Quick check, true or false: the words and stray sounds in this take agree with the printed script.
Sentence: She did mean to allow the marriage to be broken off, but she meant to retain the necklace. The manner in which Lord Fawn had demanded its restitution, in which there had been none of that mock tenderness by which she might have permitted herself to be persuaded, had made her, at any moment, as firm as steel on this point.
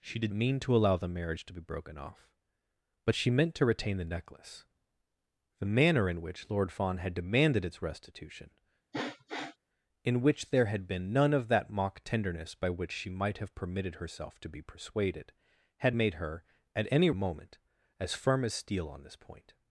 false